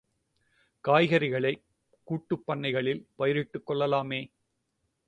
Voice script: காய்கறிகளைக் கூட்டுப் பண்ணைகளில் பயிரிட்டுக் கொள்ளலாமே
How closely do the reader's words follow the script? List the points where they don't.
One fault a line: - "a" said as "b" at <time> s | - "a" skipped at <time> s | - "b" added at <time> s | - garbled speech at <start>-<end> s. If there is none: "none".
none